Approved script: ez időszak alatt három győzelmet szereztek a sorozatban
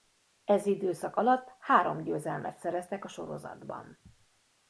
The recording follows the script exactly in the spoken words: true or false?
true